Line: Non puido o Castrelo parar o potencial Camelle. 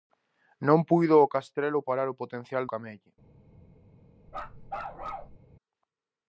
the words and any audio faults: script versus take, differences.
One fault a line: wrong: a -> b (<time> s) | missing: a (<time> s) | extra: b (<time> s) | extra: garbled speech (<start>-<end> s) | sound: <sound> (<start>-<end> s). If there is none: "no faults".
sound: bark (4.3-5.4 s)